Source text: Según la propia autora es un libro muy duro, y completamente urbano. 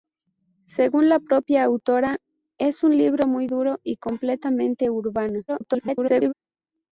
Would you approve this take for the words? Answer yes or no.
no